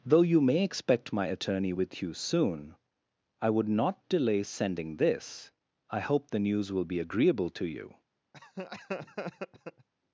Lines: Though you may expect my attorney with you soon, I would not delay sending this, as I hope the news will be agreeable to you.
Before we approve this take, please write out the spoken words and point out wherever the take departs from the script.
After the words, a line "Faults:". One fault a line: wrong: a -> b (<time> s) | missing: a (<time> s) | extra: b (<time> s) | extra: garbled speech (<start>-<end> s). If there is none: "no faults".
Though you may expect my attorney with you soon, I would not delay sending this, I hope the news will be agreeable to you.
Faults:
missing: as (5.5 s)